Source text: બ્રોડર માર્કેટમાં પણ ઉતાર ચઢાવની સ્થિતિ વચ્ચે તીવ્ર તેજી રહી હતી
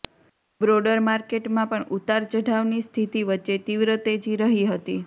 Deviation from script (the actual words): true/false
false